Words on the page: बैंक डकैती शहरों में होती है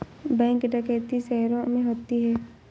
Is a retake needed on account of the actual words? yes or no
no